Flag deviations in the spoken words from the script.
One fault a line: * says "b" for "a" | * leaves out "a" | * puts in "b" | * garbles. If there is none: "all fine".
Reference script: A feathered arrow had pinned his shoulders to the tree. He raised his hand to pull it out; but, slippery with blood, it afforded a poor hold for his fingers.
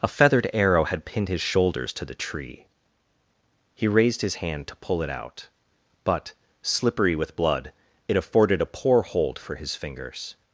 all fine